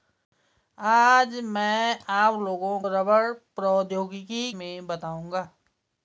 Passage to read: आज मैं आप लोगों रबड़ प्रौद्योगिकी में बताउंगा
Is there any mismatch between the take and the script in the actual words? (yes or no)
no